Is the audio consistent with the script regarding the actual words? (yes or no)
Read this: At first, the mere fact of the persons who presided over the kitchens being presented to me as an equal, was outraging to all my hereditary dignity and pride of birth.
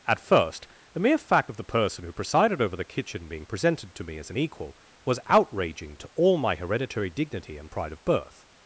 no